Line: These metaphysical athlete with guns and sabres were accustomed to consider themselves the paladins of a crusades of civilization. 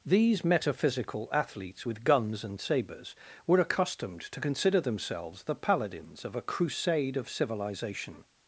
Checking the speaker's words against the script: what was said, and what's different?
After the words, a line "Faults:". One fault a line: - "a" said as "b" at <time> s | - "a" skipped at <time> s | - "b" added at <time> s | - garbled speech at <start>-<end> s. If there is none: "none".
These metaphysical athletes with guns and sabres were accustomed to consider themselves the paladins of a crusade of civilization.
Faults:
- "athlete" said as "athletes" at 1.3 s
- "crusades" said as "crusade" at 6.4 s